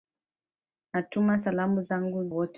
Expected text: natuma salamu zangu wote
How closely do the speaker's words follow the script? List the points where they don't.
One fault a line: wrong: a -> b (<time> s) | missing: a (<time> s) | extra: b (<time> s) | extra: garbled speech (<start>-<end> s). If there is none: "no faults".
no faults